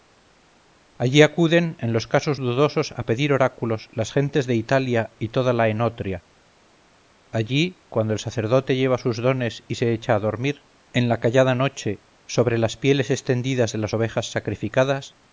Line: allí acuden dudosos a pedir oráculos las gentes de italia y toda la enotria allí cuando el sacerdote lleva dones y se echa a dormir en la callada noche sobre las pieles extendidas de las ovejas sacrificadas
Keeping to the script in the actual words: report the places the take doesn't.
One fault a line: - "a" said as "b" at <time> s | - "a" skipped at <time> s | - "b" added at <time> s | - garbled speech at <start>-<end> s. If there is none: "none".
- "en los casos" added at 1.8 s
- "sus" added at 9.0 s